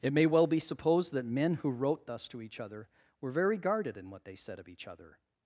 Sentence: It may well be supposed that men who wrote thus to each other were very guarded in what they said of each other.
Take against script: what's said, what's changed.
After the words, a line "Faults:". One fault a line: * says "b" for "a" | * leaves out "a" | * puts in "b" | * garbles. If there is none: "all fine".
It may well be supposed that men who wrote thus to each other were very guarded in what they said of each other.
Faults:
all fine